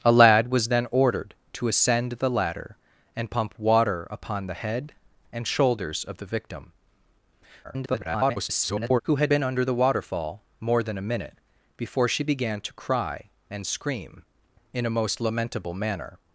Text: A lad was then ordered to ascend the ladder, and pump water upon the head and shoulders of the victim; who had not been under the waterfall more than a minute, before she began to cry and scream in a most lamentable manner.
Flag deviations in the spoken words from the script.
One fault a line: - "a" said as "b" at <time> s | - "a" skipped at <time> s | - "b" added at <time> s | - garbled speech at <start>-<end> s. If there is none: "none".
- garbled speech at 7.6-9.0 s
- "not" skipped at 9.3 s